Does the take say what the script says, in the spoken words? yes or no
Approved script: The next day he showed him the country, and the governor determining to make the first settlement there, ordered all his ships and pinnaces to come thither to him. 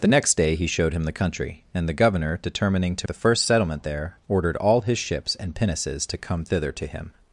no